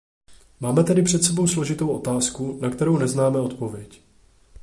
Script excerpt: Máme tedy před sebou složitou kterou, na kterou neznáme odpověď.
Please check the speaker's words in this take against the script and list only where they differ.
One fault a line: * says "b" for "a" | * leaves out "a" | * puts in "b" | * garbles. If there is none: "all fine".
* says "otázku" for "kterou"